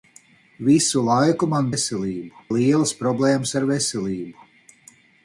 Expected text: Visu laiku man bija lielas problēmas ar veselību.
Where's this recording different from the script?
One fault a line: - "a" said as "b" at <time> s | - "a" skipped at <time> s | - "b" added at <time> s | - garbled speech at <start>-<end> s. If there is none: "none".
- "bija" said as "veselību" at 1.7 s